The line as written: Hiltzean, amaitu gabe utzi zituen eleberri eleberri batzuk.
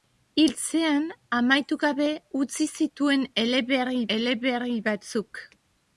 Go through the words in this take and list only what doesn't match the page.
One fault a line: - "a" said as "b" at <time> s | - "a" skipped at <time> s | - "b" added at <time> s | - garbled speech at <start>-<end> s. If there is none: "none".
none